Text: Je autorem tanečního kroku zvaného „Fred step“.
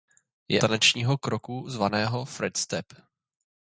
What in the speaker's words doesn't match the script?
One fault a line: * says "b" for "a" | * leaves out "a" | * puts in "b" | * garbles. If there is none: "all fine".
* leaves out "autorem"